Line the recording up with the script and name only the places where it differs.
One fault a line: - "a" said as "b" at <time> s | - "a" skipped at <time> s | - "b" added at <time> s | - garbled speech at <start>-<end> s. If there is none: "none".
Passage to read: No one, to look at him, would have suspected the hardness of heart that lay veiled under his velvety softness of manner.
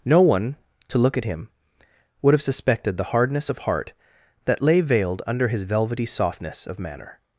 none